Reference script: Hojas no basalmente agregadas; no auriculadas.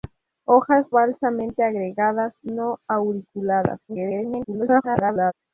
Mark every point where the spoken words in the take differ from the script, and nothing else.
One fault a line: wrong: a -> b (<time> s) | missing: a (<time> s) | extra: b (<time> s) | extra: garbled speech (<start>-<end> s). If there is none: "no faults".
missing: no (0.9 s)
extra: garbled speech (3.9-5.3 s)